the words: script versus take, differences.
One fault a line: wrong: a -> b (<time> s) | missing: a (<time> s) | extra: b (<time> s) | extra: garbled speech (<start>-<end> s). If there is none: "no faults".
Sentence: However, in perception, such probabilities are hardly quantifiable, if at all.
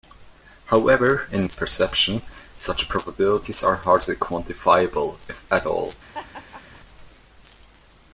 no faults